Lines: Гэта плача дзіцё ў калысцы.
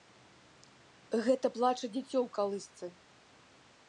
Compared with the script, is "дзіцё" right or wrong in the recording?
right